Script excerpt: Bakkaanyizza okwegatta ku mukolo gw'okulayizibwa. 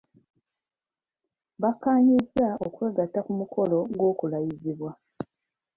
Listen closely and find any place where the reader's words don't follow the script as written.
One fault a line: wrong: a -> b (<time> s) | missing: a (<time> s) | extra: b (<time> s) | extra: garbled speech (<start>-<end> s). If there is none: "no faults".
no faults